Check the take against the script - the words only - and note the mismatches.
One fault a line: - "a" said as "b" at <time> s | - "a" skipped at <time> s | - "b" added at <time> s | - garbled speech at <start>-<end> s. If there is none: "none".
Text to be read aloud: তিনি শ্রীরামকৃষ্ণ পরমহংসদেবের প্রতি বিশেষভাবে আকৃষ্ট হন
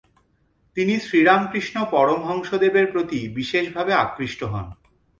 none